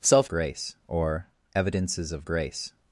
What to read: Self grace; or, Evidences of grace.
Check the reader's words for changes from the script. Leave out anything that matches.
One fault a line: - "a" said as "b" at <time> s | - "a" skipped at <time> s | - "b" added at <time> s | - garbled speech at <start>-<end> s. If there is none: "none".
none